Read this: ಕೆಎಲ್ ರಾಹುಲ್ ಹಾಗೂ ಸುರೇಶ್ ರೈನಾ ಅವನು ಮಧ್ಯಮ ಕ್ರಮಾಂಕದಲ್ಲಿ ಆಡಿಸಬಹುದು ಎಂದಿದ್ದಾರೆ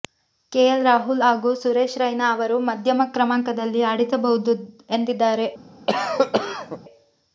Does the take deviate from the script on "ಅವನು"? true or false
true